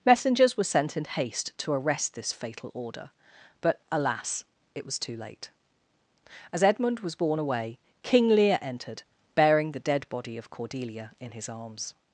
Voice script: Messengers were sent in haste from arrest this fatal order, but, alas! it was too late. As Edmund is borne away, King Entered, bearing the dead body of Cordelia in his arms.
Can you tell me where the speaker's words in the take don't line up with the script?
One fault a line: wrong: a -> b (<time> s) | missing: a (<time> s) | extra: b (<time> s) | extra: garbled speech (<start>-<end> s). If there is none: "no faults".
wrong: from -> to (1.6 s)
wrong: is -> was (7.0 s)
extra: Lear (8.3 s)